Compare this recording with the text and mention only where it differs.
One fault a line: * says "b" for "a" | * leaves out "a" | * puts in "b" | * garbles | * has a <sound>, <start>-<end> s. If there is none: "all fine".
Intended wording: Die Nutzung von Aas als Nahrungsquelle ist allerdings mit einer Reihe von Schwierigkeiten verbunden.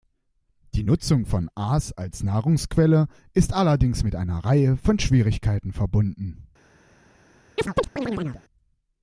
* has a chirp, 7.6-8.4 s